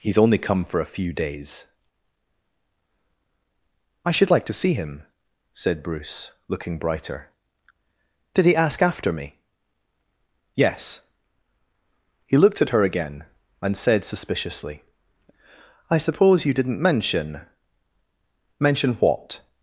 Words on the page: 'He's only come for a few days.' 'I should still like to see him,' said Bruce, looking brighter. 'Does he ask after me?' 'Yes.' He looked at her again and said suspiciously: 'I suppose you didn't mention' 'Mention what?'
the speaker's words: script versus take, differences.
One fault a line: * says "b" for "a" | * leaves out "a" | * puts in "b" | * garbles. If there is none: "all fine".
* leaves out "still"
* says "Did" for "Does"